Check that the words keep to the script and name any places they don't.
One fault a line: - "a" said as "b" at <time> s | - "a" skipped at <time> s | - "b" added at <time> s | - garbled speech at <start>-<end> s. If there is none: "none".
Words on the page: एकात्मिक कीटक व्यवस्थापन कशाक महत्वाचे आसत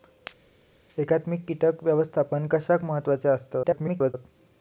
- garbled speech at 3.6-4.1 s